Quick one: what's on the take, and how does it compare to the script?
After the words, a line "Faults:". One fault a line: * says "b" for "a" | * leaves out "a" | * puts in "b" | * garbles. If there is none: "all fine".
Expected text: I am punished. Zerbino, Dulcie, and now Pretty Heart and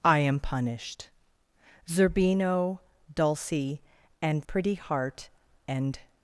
I am punished. Zerbino, Dulcie, and Pretty Heart and
Faults:
* leaves out "now"